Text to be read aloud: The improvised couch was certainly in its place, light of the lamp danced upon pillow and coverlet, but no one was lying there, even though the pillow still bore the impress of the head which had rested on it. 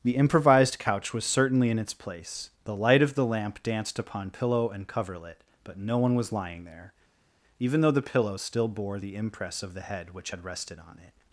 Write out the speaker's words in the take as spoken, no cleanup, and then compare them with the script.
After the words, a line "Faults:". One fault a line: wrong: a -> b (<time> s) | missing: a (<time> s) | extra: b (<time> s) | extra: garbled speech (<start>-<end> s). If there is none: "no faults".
The improvised couch was certainly in its place, the light of the lamp danced upon pillow and coverlet, but no one was lying there, even though the pillow still bore the impress of the head which had rested on it.
Faults:
extra: the (2.6 s)